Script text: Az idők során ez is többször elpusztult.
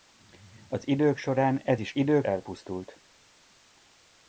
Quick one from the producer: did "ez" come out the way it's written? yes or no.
yes